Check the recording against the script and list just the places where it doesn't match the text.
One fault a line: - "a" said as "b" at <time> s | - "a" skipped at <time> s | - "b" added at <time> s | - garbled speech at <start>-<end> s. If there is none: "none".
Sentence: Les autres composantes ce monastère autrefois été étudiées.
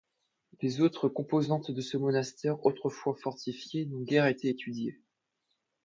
- "de" added at 1.7 s
- "fortifié n'ont guère" added at 3.1 s